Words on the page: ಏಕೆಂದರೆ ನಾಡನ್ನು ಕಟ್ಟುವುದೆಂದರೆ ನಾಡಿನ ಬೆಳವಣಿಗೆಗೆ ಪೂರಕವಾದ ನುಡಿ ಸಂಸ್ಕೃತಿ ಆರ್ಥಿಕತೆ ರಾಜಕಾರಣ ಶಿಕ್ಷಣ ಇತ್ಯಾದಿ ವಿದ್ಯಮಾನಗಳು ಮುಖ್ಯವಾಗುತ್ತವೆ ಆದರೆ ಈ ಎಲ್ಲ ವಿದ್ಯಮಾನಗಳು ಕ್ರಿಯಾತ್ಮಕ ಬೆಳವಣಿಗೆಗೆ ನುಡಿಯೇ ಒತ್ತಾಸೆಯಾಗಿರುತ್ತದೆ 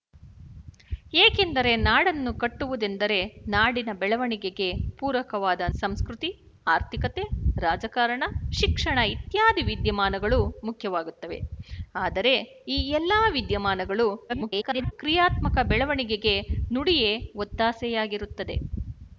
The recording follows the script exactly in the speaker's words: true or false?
false